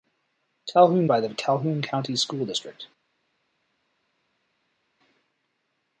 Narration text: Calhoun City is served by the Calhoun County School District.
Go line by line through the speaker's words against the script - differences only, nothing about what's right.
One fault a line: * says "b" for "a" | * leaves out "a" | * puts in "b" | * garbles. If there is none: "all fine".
* leaves out "City is served"